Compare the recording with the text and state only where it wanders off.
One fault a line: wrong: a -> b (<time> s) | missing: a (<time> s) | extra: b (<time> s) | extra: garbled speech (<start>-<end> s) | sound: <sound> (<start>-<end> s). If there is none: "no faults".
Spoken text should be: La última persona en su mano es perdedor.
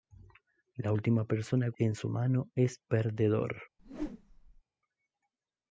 sound: whoosh (3.8-4.6 s)